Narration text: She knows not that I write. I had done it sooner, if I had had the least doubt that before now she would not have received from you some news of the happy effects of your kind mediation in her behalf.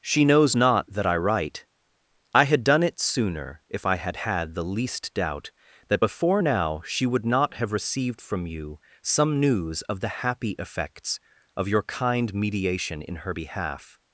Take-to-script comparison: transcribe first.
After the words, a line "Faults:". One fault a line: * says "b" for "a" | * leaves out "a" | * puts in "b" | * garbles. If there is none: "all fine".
She knows not that I write. I had done it sooner, if I had had the least doubt that before now she would not have received from you some news of the happy effects of your kind mediation in her behalf.
Faults:
all fine